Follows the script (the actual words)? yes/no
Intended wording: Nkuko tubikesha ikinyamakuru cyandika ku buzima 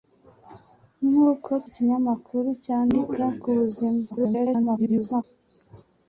no